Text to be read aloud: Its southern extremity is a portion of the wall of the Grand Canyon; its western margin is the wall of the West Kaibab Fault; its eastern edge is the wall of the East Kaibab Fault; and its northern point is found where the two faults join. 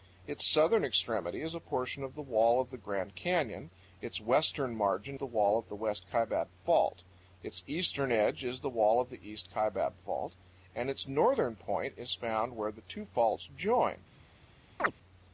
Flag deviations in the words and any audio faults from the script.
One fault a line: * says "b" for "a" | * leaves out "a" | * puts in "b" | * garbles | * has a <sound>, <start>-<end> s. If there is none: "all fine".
* leaves out "is"
* has a chirp, 14.8-14.9 s